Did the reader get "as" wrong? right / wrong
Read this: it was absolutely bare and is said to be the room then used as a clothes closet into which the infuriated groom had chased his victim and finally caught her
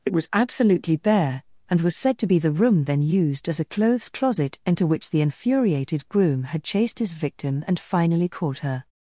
right